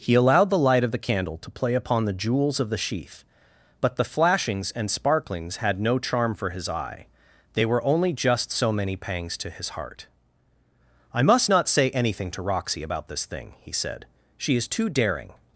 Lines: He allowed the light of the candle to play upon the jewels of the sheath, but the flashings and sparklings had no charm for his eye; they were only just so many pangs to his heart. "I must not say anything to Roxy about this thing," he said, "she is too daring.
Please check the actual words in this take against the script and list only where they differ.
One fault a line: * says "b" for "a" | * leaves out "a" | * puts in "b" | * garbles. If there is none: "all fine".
all fine